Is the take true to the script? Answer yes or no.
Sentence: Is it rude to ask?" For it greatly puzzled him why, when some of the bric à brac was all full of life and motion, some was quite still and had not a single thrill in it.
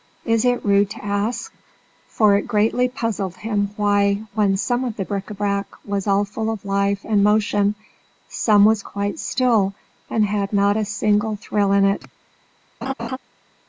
yes